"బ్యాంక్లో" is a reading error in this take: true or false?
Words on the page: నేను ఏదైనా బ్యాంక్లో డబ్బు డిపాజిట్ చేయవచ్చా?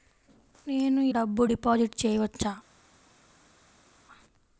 true